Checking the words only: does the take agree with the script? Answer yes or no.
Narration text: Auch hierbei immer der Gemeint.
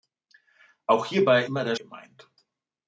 yes